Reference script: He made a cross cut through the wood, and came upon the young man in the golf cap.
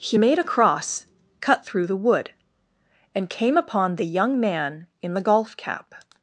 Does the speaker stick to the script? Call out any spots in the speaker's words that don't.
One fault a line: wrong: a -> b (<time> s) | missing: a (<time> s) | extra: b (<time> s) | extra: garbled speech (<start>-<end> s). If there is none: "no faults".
no faults